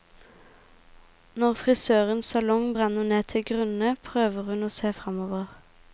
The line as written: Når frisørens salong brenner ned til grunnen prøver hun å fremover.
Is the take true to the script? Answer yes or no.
no